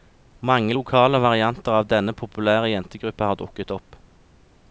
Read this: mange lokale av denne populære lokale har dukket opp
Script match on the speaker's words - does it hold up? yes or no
no